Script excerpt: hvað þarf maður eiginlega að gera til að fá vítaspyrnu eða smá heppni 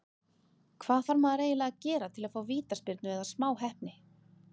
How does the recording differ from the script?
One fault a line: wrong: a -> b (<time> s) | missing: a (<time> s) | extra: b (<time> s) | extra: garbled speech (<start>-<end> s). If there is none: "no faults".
no faults